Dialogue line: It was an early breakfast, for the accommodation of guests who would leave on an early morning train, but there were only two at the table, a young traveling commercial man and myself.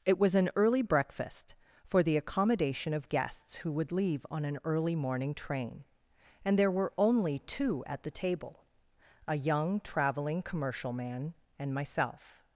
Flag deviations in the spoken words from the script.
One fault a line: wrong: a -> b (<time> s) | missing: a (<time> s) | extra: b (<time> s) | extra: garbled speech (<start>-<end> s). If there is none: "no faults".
wrong: but -> and (6.4 s)